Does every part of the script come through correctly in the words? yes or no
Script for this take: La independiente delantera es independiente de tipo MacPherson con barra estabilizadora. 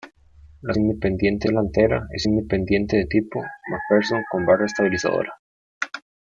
yes